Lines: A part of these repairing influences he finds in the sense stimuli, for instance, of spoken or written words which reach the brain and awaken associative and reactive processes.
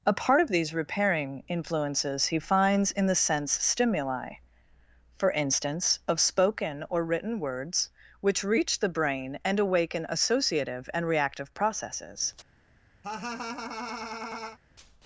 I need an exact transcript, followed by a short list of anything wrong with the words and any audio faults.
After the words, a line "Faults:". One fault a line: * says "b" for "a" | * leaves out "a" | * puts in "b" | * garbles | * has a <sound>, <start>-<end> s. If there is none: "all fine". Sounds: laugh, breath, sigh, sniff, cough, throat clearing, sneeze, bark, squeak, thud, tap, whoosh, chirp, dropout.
A part of these repairing influences he finds in the sense stimuli, for instance, of spoken or written words which reach the brain and awaken associative and reactive processes.
Faults:
* has a laugh, 13.0-14.6 s